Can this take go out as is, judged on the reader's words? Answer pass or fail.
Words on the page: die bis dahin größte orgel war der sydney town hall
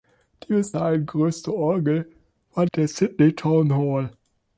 pass